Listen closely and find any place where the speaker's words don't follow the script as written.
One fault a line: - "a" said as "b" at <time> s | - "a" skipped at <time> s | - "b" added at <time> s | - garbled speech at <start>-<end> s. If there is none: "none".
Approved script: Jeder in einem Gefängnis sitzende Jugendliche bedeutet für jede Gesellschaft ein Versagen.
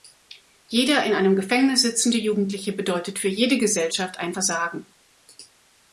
none